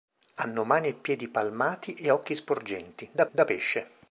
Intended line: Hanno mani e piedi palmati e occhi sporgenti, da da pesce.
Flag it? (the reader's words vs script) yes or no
no